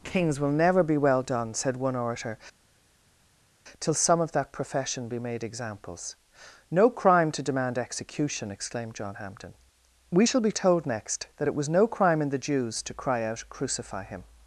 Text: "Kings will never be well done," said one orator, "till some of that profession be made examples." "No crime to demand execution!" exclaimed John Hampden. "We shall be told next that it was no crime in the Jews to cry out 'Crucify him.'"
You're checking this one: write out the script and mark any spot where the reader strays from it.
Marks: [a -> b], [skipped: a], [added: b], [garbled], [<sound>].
"Kings will never be well done," said one orator, "till some of that profession be made examples." "No crime to demand execution!" exclaimed John Hampden. "We shall be told next that it was no crime in the Jews to cry out 'Crucify him.'"